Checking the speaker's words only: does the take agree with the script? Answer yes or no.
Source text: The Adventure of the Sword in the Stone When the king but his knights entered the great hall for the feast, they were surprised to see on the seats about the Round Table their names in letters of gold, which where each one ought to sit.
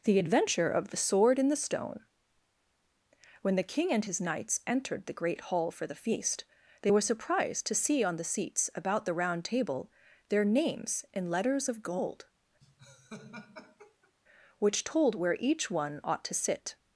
no